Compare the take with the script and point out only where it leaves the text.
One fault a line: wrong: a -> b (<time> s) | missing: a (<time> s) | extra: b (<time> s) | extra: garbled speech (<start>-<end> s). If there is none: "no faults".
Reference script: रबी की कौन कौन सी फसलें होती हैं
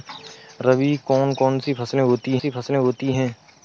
wrong: की -> कौन (1.1 s)
wrong: कौन -> सी फसलें होती (1.6 s)